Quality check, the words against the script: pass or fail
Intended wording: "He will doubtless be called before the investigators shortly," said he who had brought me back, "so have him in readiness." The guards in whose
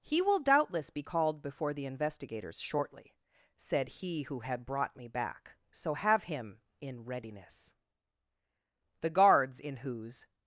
pass